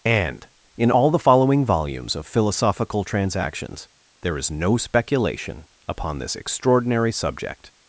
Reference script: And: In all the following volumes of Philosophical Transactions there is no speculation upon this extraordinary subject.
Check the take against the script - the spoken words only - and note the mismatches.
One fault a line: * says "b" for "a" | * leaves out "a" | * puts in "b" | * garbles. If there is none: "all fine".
all fine